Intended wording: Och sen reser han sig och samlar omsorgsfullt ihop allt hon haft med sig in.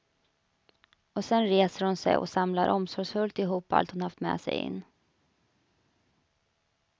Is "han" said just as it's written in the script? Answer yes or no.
no